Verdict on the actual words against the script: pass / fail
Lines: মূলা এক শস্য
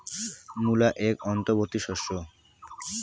fail